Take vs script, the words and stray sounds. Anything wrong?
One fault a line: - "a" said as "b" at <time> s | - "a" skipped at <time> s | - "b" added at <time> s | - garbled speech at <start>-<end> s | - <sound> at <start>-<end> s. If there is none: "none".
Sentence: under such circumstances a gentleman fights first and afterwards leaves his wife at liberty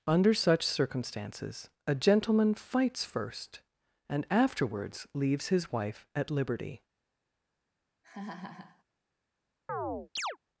- laugh at 8.0-8.8 s
- chirp at 9.7-10.4 s